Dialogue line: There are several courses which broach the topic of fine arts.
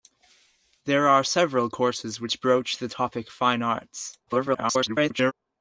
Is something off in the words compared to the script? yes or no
yes